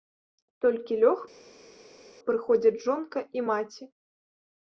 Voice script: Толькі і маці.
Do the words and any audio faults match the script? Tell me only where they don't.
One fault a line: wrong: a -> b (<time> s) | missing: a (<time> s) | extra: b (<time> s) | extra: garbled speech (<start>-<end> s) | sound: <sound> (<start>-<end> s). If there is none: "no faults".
extra: лёг прыходзяць жонка (1.0 s)